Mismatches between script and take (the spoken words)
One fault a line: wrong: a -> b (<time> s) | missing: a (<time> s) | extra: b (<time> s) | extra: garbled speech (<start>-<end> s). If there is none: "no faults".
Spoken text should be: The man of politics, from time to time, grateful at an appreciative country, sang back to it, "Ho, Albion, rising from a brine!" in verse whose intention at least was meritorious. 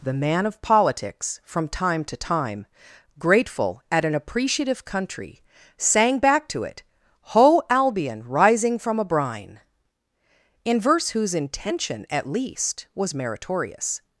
no faults